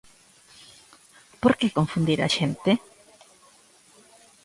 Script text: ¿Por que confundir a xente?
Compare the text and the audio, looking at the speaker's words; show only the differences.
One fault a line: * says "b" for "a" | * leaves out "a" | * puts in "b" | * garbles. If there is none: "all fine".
all fine